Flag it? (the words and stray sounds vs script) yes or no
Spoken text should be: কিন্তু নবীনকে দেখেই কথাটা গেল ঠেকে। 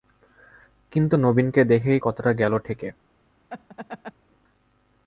yes